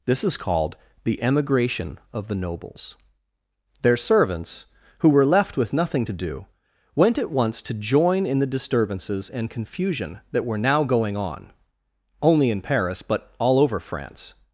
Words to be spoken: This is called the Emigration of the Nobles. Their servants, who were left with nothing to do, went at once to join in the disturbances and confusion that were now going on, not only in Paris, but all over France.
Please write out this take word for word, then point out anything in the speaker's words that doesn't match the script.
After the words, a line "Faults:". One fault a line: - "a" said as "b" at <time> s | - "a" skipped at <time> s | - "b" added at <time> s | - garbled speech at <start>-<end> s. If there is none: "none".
This is called the Emigration of the Nobles. Their servants, who were left with nothing to do, went at once to join in the disturbances and confusion that were now going on, only in Paris, but all over France.
Faults:
- "not" skipped at 11.5 s